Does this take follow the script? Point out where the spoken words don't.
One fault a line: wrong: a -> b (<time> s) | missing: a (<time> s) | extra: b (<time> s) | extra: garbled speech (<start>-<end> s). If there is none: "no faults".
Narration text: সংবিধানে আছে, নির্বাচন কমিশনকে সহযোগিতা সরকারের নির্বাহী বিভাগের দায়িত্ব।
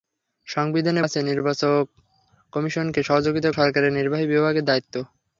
no faults